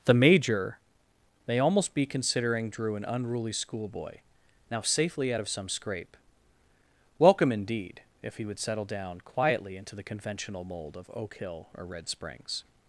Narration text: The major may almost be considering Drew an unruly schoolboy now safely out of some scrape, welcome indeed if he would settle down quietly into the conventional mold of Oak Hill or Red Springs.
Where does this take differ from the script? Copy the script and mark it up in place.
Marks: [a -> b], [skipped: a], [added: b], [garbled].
The major may almost be considering Drew an unruly schoolboy now safely out of some scrape, welcome indeed if he would settle down quietly into the conventional mold of Oak Hill or Red Springs.